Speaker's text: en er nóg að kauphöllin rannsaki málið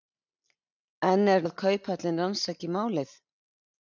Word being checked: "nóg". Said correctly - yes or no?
no